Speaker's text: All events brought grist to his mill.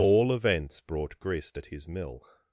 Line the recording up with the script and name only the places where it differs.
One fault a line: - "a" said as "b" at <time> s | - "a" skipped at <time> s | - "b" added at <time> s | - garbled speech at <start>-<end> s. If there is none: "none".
- "to" said as "at" at 1.6 s